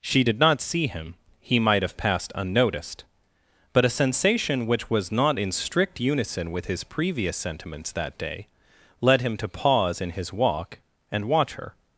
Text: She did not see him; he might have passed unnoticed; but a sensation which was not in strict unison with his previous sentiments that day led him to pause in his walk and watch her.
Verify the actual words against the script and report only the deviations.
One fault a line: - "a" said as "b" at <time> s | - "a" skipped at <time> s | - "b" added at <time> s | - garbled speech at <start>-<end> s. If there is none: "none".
none